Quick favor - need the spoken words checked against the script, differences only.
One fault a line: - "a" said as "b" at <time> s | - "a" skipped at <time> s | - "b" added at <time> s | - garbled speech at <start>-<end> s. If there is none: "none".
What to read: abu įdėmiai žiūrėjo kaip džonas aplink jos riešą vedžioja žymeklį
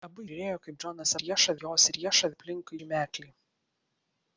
- "įdėmiai" skipped at 0.2 s
- "aplink" said as "riešą" at 1.2 s
- "vedžioja" said as "aplink" at 2.3 s